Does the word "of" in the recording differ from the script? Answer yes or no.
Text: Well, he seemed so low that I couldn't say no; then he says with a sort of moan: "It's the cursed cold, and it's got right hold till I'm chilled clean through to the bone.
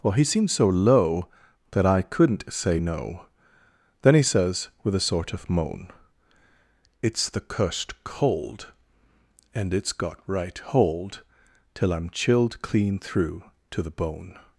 no